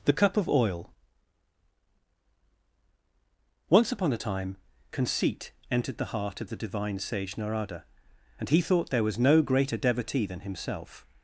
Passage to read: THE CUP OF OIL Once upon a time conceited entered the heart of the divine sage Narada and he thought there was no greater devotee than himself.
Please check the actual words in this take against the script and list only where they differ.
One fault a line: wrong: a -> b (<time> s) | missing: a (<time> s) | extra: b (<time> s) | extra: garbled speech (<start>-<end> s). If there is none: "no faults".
wrong: conceited -> conceit (4.9 s)